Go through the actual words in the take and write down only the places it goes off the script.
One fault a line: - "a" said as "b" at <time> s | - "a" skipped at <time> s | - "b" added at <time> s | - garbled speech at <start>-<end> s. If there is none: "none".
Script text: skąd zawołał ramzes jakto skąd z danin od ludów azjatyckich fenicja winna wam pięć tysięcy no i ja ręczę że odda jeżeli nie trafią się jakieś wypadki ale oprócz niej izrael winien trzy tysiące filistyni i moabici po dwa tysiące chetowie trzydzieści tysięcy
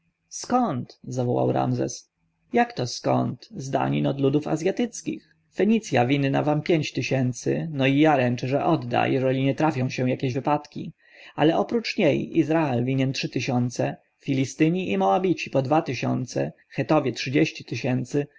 none